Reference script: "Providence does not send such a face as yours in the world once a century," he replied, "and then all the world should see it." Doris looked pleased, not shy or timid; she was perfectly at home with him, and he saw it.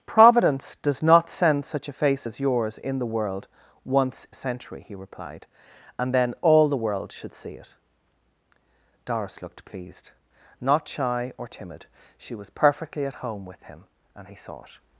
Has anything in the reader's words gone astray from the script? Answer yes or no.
no